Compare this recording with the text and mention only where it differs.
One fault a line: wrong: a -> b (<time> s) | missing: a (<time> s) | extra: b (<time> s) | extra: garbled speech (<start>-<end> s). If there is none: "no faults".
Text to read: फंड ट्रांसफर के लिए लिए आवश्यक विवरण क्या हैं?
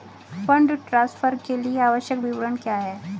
missing: लिए (1.8 s)